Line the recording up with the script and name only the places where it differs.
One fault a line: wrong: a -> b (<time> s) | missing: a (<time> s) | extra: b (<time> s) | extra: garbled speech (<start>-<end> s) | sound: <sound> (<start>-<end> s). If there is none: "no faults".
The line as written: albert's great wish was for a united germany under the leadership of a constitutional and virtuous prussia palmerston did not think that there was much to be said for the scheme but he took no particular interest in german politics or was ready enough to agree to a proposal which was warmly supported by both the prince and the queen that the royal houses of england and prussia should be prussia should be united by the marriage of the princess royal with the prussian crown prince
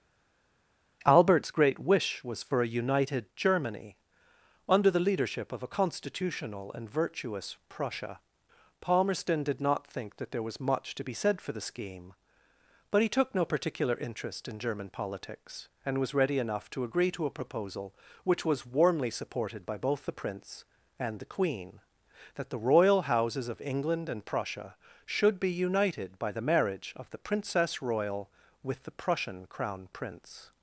wrong: or -> and (15.8 s)
missing: prussia should be (25.5 s)